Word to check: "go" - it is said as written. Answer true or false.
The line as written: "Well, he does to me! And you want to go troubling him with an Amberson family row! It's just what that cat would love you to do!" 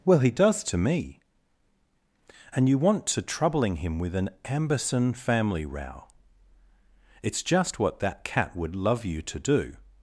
false